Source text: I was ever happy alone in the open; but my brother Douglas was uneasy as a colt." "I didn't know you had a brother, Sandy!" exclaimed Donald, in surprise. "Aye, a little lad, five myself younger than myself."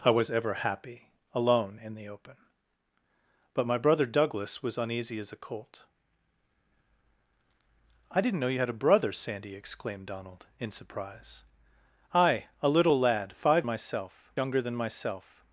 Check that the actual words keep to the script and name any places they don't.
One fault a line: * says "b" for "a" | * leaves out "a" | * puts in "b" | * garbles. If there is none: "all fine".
all fine